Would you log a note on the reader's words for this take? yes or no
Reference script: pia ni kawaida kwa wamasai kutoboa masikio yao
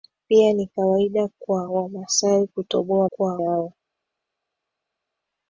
yes